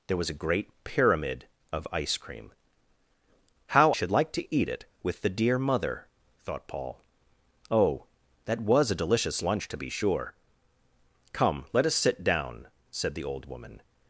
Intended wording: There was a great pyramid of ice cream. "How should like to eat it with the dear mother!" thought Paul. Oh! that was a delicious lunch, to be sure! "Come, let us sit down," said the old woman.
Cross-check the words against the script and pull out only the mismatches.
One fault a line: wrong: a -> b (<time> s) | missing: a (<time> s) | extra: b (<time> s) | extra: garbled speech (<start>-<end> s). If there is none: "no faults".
no faults